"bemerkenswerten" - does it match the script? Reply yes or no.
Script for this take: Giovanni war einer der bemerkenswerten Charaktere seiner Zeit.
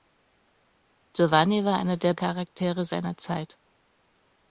no